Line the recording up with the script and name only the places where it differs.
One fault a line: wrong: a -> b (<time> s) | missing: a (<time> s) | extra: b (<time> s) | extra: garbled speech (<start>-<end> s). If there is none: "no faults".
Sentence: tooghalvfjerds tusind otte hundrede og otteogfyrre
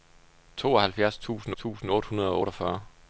extra: tusind (1.5 s)